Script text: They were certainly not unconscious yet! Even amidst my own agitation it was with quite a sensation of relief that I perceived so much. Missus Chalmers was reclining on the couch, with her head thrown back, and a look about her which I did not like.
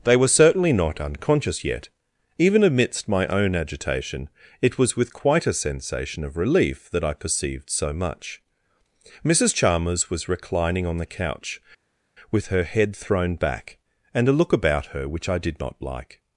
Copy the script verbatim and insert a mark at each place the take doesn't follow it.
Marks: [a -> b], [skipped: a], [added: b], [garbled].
They were certainly not unconscious yet! Even amidst my own agitation it was with quite a sensation of relief that I perceived so much. Missus Chalmers was reclining on the couch, with her head thrown back, and a look about her which I did not like.